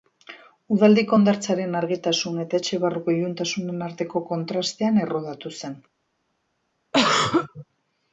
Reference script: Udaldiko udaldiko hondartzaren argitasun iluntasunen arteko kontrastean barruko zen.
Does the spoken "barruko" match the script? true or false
false